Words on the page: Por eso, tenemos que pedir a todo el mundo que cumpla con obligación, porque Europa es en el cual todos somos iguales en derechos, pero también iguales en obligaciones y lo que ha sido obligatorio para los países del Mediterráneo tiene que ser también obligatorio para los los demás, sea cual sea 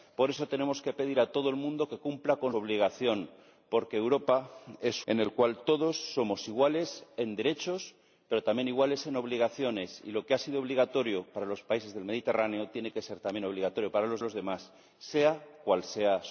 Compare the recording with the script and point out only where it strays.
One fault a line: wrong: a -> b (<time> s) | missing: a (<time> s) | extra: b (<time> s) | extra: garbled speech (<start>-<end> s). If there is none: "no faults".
no faults